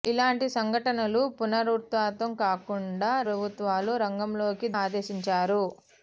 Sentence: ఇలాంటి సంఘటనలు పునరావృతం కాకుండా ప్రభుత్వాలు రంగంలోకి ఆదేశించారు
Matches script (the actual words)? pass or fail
pass